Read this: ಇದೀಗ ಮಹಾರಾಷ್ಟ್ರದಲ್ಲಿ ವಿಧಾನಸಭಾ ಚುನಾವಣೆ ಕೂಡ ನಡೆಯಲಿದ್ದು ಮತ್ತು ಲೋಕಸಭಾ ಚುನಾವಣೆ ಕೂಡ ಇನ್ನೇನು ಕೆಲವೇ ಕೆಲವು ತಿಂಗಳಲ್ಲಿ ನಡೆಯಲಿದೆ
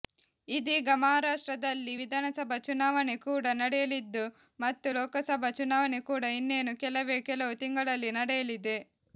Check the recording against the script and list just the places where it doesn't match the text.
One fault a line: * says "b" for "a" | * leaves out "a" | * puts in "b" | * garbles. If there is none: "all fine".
all fine